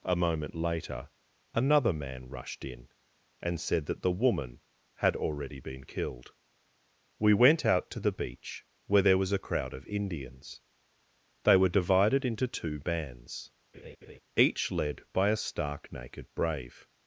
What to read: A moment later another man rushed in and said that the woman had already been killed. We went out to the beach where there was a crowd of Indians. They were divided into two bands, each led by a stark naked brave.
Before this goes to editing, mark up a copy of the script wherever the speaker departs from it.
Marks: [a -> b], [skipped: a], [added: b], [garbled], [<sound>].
A moment later another man rushed in and said that the woman had already been killed. We went out to the beach where there was a crowd of Indians. They were divided into two bands, [laugh] each led by a stark naked brave.